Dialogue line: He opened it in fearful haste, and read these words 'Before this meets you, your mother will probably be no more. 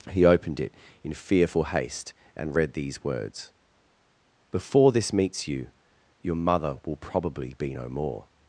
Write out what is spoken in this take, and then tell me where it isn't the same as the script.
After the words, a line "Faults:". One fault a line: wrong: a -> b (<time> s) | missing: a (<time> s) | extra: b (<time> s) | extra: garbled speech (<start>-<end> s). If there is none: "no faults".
He opened it in fearful haste, and read these words 'Before this meets you, your mother will probably be no more.
Faults:
no faults